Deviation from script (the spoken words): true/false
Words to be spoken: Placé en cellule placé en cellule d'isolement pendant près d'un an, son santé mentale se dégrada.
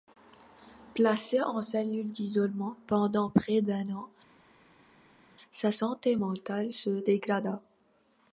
true